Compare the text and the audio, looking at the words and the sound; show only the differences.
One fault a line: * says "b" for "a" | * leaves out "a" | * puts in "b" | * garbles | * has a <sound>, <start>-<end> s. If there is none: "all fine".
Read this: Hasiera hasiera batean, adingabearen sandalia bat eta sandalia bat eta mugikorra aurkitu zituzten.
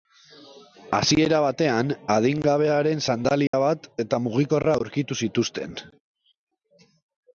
* leaves out "hasiera"
* has a dropout, 3.5-3.5 s
* leaves out "sandalia bat eta"